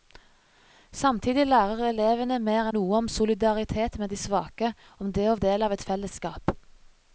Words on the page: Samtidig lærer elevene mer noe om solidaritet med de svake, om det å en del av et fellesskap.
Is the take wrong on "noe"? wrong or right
right